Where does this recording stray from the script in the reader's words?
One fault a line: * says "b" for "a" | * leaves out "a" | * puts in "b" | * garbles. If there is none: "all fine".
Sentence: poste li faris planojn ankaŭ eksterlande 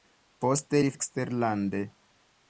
* leaves out "faris planojn ankaŭ"